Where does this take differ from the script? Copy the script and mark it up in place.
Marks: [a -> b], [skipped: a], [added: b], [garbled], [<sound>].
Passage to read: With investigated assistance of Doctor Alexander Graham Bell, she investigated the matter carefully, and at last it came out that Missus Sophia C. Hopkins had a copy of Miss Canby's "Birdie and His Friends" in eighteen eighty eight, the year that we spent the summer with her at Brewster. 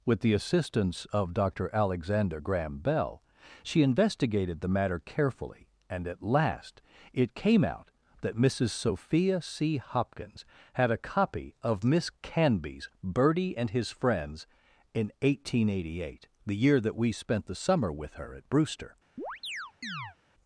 With [investigated -> the] assistance of Doctor Alexander Graham Bell, she investigated the matter carefully, and at last it came out that Missus Sophia C. Hopkins had a copy of Miss Canby's "Birdie and His Friends" in eighteen eighty eight, the year that we spent the summer with her at Brewster. [chirp]